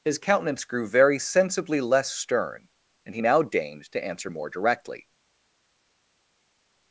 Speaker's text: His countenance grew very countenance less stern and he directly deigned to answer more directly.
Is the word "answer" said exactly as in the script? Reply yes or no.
yes